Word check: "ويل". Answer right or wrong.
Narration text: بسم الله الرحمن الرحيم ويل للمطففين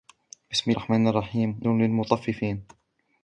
wrong